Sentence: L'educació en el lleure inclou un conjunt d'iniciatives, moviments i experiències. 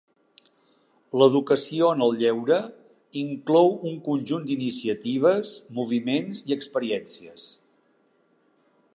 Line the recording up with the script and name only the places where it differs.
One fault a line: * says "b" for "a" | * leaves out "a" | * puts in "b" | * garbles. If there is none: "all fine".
all fine